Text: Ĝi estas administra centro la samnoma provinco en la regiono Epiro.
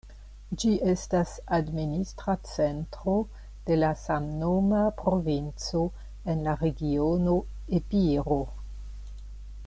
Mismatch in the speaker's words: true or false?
true